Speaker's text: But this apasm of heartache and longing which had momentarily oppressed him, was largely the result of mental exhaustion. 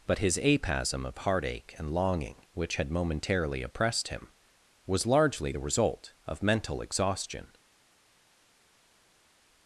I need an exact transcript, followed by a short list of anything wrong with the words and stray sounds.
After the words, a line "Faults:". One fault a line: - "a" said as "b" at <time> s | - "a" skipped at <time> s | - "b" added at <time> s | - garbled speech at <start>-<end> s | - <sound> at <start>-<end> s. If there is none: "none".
But his apasm of heartache and longing which had momentarily oppressed him, was largely the result of mental exhaustion.
Faults:
- "this" said as "his" at 0.2 s